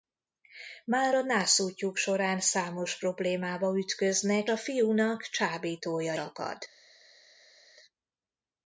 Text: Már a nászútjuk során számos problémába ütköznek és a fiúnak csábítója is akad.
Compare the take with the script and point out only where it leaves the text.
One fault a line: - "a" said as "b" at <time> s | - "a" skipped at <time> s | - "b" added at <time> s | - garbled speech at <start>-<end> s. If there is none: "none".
- "és" skipped at 4.5 s
- "is" skipped at 6.1 s